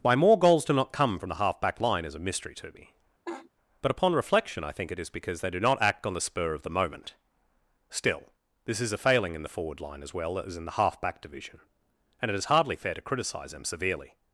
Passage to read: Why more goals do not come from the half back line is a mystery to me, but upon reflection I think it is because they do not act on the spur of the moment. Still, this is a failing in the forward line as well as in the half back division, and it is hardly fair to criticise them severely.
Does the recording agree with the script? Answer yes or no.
yes